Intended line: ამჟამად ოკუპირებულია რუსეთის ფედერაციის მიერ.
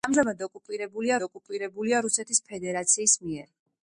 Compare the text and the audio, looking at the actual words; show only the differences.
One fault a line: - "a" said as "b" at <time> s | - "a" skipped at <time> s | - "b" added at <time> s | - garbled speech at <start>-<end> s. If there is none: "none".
- "ოკუპირებულია" added at 1.2 s